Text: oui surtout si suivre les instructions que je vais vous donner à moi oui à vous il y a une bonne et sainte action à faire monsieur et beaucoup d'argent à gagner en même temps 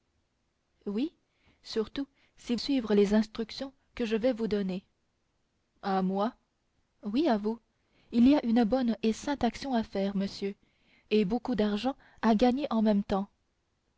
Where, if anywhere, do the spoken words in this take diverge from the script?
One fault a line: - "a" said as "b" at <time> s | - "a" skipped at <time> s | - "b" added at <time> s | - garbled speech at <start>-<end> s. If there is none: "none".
none